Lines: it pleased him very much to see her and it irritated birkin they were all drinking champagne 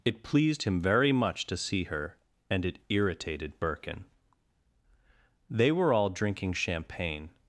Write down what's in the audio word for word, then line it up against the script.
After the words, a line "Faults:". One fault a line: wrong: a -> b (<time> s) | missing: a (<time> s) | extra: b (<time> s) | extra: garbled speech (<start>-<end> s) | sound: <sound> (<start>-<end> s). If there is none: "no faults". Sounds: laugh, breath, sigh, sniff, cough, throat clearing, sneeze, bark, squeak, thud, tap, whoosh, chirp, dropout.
it pleased him very much to see her and it irritated birkin they were all drinking champagne
Faults:
no faults